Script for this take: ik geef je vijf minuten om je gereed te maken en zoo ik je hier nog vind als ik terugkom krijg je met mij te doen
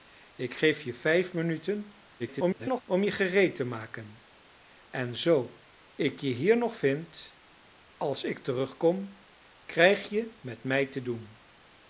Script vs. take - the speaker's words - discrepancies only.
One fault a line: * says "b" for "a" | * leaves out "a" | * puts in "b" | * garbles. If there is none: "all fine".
* garbles